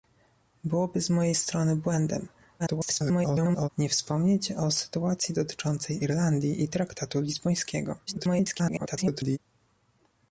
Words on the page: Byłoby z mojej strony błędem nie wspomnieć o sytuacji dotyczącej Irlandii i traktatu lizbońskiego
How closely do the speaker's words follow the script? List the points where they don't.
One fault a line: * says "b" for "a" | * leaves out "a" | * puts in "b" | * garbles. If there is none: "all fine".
* garbles
* garbles